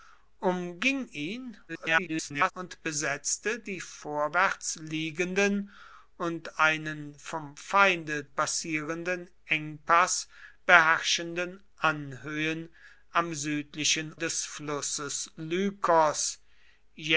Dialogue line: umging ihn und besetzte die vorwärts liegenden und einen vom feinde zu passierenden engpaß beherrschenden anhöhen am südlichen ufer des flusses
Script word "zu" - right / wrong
wrong